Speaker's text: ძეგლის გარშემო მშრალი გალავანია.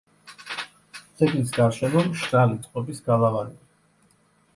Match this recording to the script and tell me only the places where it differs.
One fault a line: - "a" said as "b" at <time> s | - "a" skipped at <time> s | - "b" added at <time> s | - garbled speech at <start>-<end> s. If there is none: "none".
- "წყობის" added at 2.7 s